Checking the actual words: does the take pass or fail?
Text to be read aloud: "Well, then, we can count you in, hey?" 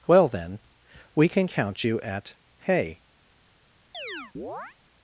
fail